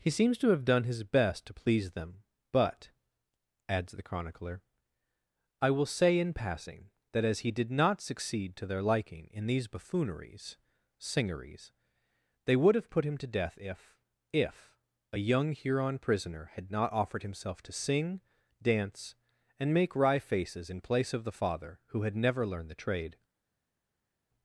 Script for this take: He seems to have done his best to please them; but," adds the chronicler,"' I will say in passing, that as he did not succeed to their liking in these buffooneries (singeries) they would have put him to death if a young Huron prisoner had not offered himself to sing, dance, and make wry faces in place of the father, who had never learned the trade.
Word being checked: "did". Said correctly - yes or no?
yes